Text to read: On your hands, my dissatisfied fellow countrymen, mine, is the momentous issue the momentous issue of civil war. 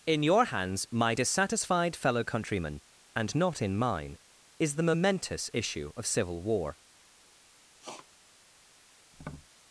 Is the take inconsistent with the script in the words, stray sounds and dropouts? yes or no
yes